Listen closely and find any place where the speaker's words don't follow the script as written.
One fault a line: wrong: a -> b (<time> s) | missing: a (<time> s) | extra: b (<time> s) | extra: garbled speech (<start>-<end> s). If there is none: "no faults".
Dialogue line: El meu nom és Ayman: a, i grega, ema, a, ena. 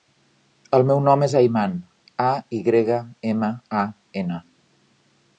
no faults